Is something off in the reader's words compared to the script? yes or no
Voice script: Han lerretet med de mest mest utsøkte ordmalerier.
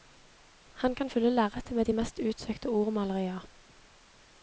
yes